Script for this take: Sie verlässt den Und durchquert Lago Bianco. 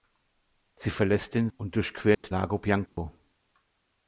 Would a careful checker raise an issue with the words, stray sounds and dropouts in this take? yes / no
yes